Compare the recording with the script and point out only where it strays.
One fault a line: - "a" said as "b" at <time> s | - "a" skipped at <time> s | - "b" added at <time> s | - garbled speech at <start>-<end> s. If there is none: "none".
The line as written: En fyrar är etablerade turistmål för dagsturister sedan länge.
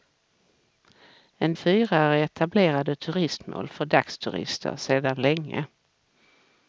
none